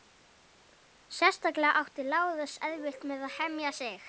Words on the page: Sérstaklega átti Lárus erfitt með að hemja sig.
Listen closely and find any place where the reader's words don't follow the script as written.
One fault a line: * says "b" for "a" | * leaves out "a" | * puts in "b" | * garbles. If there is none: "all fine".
all fine